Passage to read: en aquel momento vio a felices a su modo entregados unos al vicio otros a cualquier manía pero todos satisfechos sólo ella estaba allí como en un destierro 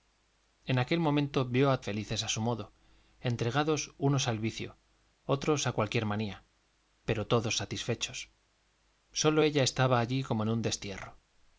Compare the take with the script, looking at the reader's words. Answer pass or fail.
pass